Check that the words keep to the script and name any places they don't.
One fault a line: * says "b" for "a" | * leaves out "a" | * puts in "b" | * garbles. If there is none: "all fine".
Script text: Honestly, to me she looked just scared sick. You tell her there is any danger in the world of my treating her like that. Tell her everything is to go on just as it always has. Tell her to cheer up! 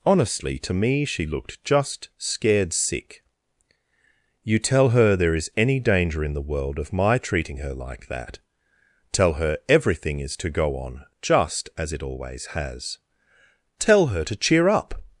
all fine